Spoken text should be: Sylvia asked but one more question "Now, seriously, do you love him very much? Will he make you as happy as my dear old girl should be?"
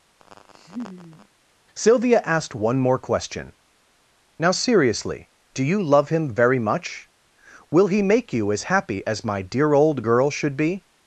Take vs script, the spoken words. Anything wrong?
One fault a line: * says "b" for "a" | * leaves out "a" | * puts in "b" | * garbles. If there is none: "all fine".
* leaves out "but"